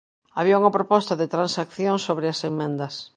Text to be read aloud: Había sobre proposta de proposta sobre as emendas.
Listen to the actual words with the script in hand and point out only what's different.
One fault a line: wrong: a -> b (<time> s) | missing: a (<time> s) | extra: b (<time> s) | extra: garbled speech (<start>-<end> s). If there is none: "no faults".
wrong: sobre -> unha (0.6 s)
wrong: proposta -> transacción (1.4 s)